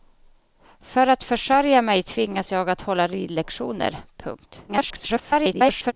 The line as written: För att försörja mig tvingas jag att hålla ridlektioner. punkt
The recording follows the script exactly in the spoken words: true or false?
false